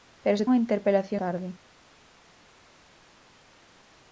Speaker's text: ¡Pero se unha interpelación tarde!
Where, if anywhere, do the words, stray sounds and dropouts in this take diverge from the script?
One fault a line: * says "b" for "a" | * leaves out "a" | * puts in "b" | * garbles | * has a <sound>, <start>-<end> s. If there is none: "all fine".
all fine